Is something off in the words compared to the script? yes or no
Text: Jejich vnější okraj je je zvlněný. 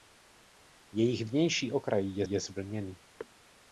no